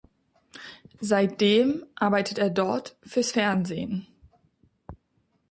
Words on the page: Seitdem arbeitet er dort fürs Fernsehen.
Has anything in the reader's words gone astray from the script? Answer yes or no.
no